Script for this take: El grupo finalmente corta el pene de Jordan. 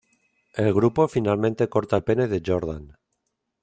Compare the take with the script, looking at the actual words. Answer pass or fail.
pass